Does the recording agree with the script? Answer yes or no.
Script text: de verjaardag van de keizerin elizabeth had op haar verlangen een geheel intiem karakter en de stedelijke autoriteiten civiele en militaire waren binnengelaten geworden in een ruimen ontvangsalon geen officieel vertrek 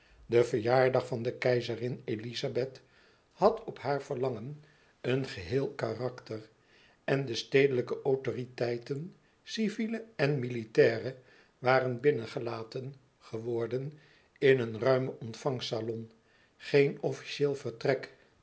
no